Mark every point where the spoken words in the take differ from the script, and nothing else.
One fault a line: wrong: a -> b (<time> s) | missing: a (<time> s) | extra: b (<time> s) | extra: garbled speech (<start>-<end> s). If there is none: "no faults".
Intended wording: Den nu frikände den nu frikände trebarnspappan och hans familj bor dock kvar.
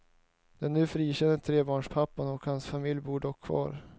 missing: den nu frikände (1.4 s)